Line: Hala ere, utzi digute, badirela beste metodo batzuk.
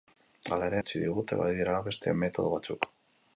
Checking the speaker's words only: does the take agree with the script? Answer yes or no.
yes